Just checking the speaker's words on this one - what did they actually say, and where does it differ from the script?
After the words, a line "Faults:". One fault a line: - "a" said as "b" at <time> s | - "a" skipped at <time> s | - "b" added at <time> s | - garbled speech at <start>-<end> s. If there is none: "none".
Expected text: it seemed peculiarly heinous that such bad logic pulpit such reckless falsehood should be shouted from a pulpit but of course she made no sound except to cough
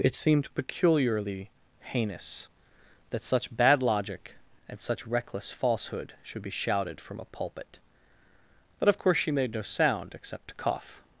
it seemed peculiarly heinous that such bad logic and such reckless falsehood should be shouted from a pulpit but of course she made no sound except to cough
Faults:
- "pulpit" said as "and" at 4.7 s